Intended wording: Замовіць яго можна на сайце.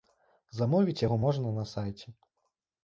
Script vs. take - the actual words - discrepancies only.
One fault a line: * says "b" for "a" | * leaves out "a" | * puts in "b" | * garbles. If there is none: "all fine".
all fine